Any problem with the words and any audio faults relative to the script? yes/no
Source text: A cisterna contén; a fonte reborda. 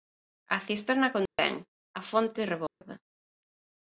yes